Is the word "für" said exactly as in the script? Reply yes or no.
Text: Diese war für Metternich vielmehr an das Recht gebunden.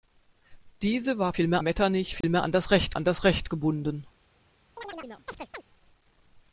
no